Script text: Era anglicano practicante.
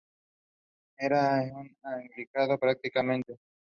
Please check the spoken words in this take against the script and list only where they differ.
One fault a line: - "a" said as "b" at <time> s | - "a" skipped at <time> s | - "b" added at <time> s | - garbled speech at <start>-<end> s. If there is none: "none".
- "un" added at 1.5 s